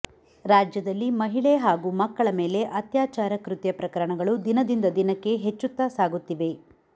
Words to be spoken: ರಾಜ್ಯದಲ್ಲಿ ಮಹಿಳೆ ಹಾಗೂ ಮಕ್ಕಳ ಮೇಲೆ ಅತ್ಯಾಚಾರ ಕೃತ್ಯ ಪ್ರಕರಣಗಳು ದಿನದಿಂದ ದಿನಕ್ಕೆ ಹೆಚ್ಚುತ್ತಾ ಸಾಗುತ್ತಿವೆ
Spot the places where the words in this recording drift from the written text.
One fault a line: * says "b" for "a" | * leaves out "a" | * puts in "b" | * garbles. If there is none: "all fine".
all fine